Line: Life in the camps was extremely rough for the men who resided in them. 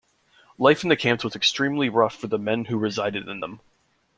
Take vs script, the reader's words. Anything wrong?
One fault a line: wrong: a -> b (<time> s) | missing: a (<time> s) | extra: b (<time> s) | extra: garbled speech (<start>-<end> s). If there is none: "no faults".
no faults